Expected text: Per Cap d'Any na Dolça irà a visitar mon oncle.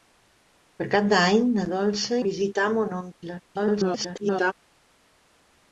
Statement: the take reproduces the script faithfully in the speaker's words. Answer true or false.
false